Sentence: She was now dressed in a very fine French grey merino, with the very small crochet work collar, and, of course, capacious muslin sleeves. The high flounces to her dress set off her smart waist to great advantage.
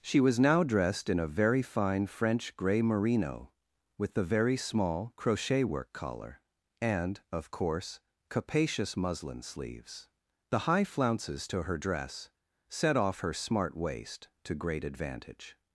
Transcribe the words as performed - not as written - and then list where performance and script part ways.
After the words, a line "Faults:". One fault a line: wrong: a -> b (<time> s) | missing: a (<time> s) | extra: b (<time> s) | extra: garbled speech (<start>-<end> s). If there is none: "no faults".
She was now dressed in a very fine French grey merino, with the very small crochet work collar, and, of course, capacious muslin sleeves. The high flounces to her dress set off her smart waist to great advantage.
Faults:
no faults